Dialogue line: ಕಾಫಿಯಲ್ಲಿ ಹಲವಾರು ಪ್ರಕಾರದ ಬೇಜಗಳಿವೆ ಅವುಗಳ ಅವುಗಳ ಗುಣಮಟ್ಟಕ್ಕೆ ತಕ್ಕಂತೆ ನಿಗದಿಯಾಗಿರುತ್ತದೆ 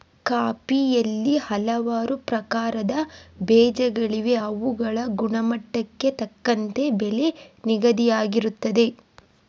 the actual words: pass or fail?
fail